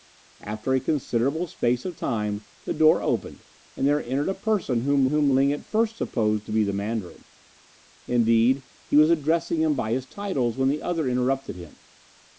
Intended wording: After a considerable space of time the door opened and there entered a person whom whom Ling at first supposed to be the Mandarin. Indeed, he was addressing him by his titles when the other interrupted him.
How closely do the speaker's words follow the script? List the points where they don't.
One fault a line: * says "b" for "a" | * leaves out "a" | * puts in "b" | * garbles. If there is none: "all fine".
all fine